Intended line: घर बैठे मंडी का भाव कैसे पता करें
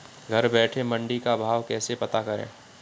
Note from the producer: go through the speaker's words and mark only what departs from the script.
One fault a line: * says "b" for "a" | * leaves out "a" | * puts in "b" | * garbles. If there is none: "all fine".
all fine